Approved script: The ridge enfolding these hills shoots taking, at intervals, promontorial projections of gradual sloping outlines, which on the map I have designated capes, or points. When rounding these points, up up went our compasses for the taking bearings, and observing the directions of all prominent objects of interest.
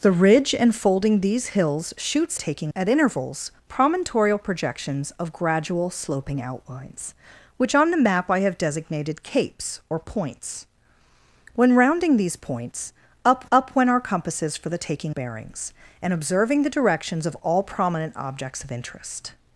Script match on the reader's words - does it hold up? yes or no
yes